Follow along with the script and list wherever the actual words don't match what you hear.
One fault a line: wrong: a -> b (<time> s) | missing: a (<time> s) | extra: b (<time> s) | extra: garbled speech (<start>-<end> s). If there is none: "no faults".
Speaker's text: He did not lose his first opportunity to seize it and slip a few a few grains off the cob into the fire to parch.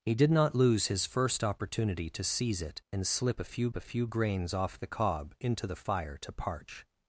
no faults